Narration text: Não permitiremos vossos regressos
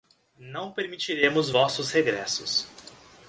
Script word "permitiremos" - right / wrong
right